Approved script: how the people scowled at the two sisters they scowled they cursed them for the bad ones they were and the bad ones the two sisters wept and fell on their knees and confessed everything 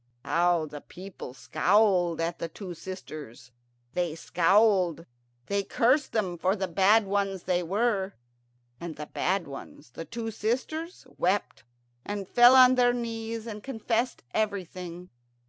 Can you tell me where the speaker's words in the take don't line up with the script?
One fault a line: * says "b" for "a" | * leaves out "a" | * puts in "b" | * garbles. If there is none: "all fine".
all fine